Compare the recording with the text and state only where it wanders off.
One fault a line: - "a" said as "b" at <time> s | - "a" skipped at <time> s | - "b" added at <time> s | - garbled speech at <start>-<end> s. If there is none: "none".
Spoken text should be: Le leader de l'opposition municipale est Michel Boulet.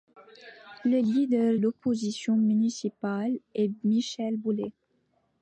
- "de" skipped at 1.6 s